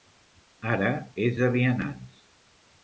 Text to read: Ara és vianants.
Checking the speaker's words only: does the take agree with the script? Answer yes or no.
no